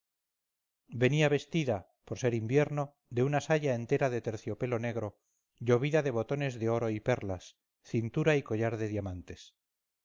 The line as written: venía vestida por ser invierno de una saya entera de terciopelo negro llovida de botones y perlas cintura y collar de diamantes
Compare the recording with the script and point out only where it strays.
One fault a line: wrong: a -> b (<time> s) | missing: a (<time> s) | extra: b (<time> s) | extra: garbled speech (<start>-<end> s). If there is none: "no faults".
extra: de oro (6.6 s)